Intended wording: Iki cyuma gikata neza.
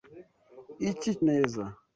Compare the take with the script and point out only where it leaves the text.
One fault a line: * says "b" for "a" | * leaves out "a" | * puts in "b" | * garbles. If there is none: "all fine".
* leaves out "cyuma gikata"